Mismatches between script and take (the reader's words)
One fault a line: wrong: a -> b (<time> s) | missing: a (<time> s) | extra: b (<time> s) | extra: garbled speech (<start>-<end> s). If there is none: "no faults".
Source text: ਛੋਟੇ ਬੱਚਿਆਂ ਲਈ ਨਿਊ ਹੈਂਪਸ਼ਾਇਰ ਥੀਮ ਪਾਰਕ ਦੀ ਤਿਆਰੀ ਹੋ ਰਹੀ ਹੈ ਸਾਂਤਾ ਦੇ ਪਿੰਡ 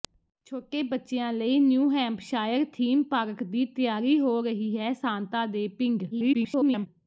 extra: garbled speech (6.1-6.9 s)